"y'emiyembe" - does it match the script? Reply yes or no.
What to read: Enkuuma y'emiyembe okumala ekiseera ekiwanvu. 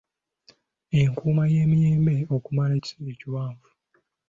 yes